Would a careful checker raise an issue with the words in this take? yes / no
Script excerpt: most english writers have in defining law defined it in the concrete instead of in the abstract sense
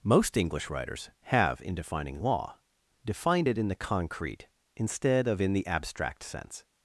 no